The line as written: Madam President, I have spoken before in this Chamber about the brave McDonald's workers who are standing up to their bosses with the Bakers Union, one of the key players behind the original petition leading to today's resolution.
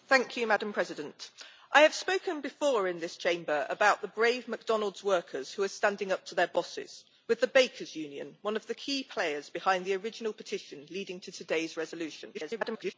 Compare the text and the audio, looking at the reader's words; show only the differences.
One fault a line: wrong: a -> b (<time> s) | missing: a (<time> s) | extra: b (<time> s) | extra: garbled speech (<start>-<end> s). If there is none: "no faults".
extra: garbled speech (12.3-12.9 s)